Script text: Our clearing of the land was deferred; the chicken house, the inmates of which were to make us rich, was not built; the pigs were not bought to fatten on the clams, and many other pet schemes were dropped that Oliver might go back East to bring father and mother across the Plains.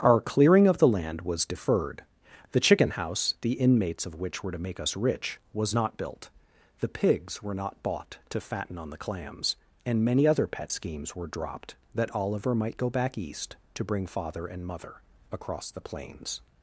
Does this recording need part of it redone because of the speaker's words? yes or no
no